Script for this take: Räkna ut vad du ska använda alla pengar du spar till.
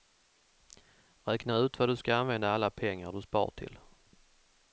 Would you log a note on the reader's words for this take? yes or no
no